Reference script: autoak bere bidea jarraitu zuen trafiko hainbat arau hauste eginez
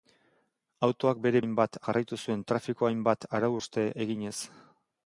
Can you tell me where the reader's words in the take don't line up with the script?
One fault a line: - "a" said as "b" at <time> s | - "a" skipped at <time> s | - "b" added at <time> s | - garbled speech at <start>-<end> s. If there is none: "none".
- "bidea" said as "hainbat" at 1.4 s